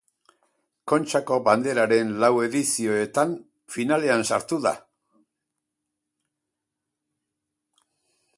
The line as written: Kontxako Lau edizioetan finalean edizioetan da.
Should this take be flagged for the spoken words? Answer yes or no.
yes